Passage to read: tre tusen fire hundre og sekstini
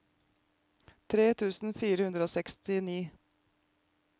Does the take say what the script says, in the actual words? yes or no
yes